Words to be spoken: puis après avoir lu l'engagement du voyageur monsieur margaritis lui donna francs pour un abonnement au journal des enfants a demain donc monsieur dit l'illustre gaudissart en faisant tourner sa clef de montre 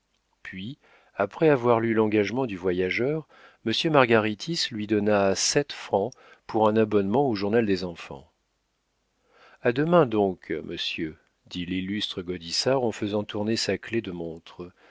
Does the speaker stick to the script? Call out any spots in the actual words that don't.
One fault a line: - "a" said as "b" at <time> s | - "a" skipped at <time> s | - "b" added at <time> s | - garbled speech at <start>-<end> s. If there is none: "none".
- "sept" added at 5.3 s